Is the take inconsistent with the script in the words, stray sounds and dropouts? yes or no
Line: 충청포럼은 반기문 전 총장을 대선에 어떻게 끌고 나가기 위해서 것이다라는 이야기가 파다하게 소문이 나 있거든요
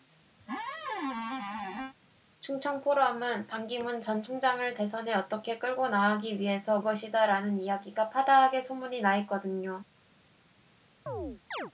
yes